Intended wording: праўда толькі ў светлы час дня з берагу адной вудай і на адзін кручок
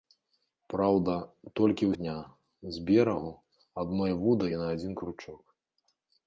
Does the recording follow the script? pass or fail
fail